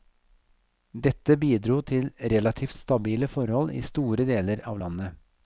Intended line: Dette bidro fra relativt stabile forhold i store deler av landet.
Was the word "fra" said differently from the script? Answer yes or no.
yes